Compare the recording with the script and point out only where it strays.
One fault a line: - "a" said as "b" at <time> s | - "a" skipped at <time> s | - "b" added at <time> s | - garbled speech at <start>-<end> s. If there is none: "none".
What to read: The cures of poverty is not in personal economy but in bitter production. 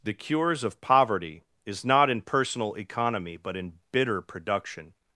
none